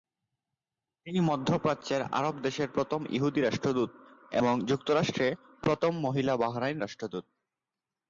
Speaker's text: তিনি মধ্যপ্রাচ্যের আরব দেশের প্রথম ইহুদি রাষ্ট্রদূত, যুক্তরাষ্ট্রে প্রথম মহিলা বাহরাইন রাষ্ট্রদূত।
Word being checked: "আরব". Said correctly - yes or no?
yes